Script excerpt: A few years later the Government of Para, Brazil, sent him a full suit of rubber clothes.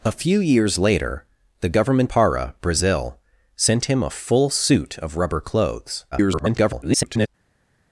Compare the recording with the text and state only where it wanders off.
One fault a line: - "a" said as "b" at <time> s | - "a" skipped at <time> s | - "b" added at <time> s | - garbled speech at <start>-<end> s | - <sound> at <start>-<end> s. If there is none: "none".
- "of" skipped at 2.1 s
- garbled speech at 6.1-7.3 s